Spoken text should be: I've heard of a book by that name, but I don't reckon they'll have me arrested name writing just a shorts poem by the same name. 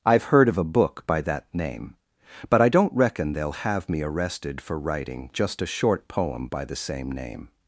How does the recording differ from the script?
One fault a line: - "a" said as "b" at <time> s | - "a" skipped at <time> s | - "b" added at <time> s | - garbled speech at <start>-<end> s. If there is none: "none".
- "name" said as "for" at 4.6 s
- "shorts" said as "short" at 5.7 s